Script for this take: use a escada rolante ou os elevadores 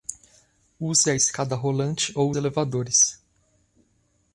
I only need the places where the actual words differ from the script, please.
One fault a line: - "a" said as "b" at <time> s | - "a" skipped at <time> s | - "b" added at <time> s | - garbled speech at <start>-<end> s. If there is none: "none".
- "os" skipped at 2.3 s